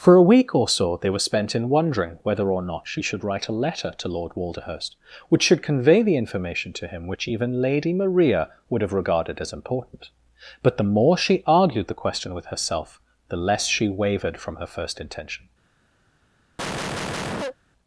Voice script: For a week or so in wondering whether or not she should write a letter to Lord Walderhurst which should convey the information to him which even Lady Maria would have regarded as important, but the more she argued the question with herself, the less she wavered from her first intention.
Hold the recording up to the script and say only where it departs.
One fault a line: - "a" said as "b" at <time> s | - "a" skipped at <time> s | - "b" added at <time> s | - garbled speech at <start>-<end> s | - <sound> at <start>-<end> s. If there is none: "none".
- "they were spent" added at 1.0 s
- cough at 16.6-17.6 s